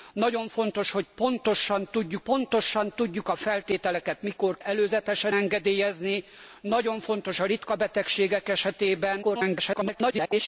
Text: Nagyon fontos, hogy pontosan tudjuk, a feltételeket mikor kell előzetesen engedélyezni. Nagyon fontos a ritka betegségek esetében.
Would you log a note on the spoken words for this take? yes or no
yes